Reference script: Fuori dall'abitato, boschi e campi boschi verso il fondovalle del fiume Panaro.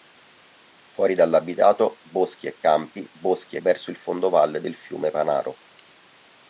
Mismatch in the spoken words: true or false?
false